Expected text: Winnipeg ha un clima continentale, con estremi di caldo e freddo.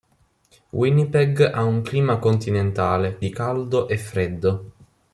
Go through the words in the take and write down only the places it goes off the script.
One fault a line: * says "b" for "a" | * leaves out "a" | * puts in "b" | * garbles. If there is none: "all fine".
* leaves out "con estremi"